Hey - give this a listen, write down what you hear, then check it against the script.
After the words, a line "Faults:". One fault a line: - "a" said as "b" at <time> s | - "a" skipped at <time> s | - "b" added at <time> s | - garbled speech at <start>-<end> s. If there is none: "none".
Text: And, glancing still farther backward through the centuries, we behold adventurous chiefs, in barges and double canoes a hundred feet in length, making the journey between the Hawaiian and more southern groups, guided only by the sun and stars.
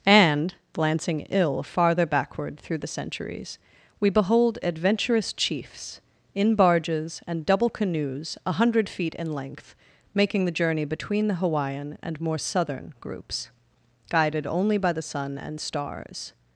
And, glancing ill farther backward through the centuries, we behold adventurous chiefs, in barges and double canoes a hundred feet in length, making the journey between the Hawaiian and more southern groups, guided only by the sun and stars.
Faults:
- "still" said as "ill" at 1.3 s